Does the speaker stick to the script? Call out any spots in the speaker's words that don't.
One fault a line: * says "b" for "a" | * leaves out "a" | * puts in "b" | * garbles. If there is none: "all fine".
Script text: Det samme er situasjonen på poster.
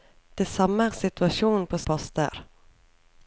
all fine